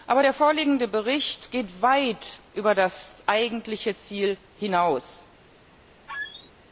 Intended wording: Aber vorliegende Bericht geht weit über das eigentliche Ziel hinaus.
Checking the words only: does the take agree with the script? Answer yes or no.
no